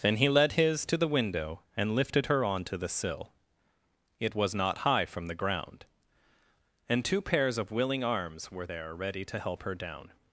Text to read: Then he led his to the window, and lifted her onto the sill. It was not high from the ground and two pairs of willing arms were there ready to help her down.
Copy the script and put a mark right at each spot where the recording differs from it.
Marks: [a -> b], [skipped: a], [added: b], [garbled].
Then he led his to the window, and lifted her onto the sill. It was not high from the ground and two pairs of willing arms were there ready to help her down.